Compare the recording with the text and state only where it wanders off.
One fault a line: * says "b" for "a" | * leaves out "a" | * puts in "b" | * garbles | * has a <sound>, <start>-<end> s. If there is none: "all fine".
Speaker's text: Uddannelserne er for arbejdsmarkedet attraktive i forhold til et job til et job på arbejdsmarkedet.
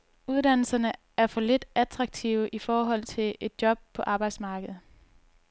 * says "lidt" for "arbejdsmarkedet"
* leaves out "til et job"